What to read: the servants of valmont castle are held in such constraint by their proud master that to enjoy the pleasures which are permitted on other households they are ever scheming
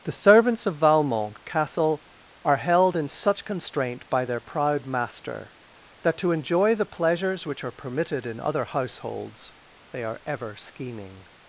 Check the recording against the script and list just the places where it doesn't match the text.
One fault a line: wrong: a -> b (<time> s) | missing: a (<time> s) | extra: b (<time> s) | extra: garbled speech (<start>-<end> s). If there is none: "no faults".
wrong: on -> in (8.3 s)